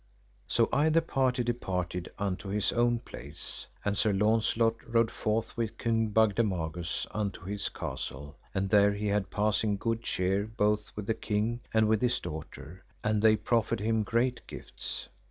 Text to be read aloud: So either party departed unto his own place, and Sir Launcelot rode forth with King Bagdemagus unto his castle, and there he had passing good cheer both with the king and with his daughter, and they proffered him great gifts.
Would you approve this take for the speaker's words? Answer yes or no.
yes